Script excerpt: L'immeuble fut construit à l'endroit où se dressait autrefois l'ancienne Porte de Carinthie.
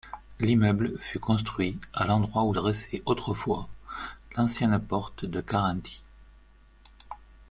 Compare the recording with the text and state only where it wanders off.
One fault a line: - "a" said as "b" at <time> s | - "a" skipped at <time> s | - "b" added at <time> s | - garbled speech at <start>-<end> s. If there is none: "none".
- "se" skipped at 2.5 s